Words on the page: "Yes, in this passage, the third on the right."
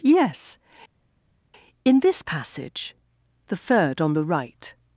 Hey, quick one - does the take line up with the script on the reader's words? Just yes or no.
yes